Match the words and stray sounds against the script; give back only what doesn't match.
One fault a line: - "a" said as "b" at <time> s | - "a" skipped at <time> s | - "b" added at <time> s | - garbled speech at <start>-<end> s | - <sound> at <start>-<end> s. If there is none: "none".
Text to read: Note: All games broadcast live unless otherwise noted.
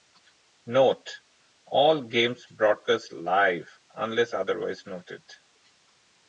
none